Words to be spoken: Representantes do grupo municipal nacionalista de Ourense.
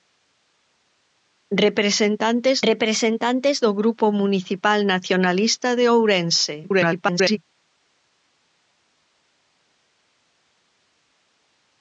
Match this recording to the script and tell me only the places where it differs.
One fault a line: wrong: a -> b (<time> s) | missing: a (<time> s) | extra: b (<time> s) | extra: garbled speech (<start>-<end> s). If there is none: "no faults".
extra: representantes (2.7 s)
extra: garbled speech (6.6-7.4 s)